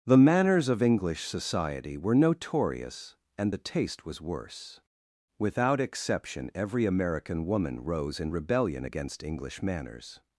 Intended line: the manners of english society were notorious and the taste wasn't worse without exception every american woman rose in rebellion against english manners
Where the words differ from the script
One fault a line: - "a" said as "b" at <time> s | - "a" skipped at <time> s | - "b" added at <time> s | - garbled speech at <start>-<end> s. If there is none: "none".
- "wasn't" said as "was" at 4.0 s